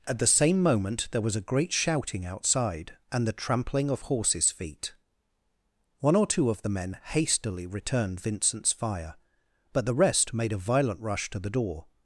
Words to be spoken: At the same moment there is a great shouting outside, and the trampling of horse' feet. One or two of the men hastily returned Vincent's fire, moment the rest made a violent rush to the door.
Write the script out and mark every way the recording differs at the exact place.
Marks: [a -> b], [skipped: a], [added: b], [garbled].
At the same moment there [is -> was] a great shouting outside, and the trampling of [horse' -> horses] feet. One or two of the men hastily returned Vincent's fire, [moment -> but] the rest made a violent rush to the door.